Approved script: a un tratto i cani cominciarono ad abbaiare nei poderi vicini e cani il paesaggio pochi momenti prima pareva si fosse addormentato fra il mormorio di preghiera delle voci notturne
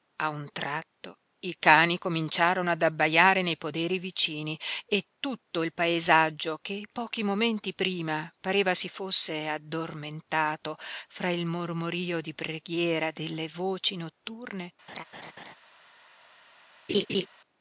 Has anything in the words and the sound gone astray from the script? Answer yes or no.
yes